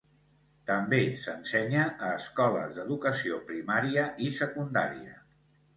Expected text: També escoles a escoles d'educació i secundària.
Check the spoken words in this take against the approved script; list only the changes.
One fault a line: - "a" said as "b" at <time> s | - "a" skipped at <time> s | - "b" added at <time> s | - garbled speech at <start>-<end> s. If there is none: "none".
- "escoles" said as "s'ensenya" at 1.2 s
- "primària" added at 3.5 s